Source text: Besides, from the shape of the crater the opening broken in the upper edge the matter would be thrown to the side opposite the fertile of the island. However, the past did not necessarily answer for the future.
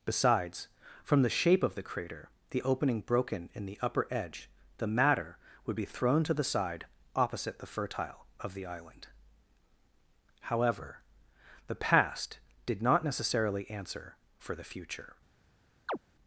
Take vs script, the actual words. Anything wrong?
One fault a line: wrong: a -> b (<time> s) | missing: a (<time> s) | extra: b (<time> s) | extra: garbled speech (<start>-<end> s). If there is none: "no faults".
no faults